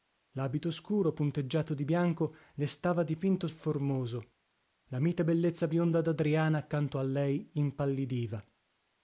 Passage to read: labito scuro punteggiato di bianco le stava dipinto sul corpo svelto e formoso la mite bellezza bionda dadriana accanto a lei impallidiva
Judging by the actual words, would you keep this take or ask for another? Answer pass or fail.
fail